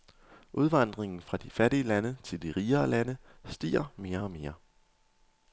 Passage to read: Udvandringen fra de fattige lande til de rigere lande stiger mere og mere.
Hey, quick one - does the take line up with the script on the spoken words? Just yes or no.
yes